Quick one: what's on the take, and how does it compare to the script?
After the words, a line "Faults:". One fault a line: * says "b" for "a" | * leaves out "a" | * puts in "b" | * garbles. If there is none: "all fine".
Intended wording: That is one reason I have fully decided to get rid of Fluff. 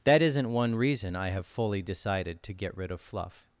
That isn't one reason I have fully decided to get rid of Fluff.
Faults:
* says "isn't" for "is"